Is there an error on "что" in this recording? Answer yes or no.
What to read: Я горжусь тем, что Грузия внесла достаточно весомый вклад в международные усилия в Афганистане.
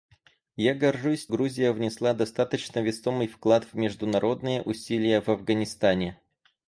yes